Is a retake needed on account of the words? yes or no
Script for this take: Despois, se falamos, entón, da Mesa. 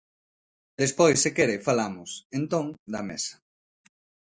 yes